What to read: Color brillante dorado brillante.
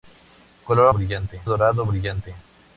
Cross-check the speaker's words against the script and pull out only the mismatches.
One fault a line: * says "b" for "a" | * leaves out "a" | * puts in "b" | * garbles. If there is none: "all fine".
all fine